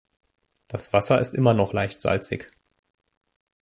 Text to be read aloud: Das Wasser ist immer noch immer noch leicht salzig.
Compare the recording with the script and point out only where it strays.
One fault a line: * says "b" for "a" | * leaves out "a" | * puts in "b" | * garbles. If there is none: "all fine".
* leaves out "immer noch"